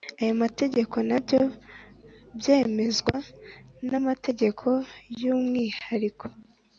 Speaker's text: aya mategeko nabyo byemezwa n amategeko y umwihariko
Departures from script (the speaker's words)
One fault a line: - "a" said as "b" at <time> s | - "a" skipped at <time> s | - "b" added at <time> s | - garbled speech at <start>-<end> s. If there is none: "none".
none